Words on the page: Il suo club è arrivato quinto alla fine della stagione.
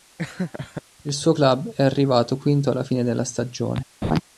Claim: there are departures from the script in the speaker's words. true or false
false